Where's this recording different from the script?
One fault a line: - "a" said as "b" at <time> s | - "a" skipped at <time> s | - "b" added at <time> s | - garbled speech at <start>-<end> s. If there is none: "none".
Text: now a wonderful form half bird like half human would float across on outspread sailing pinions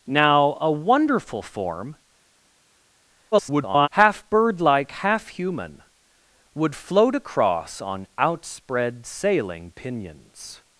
- garbled speech at 3.3-3.9 s